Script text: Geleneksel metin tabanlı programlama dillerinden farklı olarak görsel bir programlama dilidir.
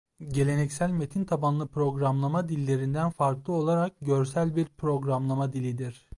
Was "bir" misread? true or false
false